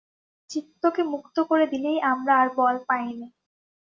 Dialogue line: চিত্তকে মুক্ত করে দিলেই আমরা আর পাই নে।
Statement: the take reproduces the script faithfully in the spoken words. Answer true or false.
false